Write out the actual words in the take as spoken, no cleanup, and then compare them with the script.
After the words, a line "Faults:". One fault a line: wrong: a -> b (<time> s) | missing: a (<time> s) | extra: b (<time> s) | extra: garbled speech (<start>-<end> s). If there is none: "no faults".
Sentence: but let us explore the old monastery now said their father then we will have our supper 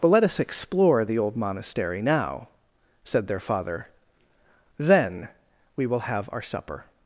but let us explore the old monastery now said their father then we will have our supper
Faults:
no faults